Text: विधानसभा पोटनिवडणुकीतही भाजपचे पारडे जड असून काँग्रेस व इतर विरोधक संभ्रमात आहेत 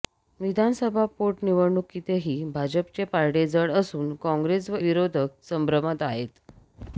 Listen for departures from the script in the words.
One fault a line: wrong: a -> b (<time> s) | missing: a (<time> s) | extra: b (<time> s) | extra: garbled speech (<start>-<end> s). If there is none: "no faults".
missing: इतर (4.8 s)